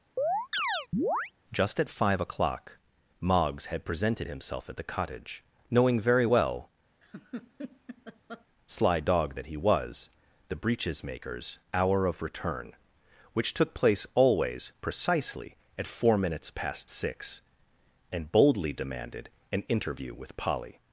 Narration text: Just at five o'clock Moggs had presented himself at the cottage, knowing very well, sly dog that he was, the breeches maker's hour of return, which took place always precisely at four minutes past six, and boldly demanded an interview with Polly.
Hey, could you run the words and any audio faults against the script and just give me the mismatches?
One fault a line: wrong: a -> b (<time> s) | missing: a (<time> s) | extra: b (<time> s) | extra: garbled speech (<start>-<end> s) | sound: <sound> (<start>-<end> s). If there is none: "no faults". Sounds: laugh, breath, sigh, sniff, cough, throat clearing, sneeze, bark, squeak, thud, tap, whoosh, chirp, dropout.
sound: chirp (0.2-1.3 s)
sound: laugh (7.0-8.4 s)